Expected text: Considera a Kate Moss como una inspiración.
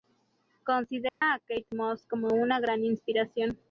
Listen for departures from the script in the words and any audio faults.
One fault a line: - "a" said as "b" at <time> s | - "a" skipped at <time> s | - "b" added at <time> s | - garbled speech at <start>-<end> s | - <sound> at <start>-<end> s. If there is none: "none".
- dropout at 1.1-1.2 s
- "gran" added at 2.6 s